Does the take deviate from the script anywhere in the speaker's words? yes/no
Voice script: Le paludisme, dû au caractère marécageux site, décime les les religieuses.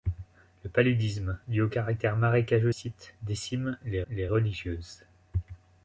no